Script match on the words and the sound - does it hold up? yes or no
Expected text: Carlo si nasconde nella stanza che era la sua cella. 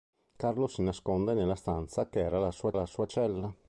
no